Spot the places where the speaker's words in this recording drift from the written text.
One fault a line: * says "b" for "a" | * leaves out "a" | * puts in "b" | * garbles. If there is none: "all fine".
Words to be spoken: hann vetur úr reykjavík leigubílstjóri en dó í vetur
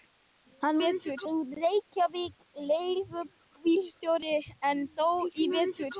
all fine